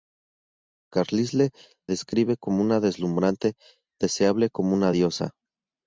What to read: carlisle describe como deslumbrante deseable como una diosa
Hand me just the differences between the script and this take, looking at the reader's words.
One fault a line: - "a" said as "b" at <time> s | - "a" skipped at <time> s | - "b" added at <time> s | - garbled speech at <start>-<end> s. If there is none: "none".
none